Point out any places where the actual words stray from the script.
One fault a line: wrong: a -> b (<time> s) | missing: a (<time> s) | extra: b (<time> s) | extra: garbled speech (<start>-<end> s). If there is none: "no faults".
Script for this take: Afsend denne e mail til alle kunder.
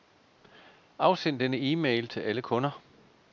no faults